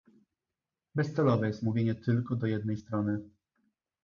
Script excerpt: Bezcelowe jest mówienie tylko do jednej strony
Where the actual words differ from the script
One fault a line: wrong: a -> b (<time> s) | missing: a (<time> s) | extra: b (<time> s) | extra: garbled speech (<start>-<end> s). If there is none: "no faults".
no faults